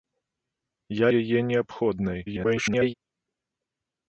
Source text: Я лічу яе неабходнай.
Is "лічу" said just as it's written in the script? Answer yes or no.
no